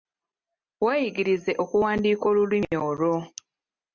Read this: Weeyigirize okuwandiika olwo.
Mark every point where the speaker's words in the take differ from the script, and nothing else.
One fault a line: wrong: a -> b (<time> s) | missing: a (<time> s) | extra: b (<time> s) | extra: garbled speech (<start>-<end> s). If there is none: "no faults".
extra: olulimi (2.3 s)